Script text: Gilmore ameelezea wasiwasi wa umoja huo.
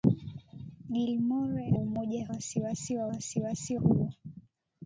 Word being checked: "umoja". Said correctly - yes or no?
no